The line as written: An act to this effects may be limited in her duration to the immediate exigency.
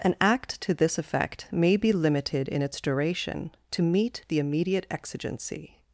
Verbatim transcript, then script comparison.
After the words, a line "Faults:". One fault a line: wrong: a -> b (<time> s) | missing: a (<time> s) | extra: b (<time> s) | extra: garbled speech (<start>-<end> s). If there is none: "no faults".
An act to this effect may be limited in its duration to meet the immediate exigency.
Faults:
wrong: effects -> effect (1.0 s)
wrong: her -> its (2.6 s)
extra: meet (3.8 s)